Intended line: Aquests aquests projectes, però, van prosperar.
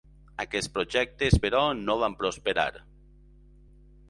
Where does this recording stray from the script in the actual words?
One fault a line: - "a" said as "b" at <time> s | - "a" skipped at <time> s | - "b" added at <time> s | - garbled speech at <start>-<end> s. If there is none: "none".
- "aquests" skipped at 0.7 s
- "no" added at 1.8 s